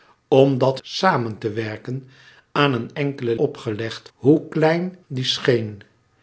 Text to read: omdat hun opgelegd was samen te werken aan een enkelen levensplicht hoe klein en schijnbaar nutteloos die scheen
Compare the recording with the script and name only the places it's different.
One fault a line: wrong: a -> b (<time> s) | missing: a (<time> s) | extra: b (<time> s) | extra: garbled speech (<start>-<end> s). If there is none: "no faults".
missing: hun opgelegd was (0.8 s)
wrong: levensplicht -> opgelegd (3.3 s)
missing: en schijnbaar nutteloos (5.0 s)